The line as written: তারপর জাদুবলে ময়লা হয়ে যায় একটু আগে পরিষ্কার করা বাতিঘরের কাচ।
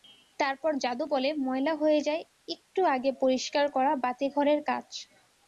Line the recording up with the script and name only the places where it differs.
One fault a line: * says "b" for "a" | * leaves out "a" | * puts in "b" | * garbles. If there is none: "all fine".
all fine